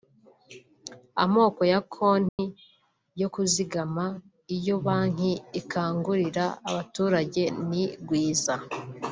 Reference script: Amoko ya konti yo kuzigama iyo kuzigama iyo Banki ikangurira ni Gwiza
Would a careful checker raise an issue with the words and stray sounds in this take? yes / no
yes